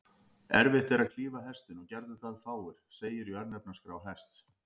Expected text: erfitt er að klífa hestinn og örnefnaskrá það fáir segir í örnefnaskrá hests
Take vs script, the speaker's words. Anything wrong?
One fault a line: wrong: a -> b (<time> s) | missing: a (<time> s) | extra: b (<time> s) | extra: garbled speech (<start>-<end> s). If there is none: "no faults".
wrong: örnefnaskrá -> gerðu (1.9 s)